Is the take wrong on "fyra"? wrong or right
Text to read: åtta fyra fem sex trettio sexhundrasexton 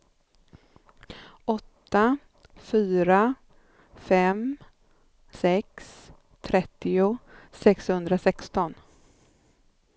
right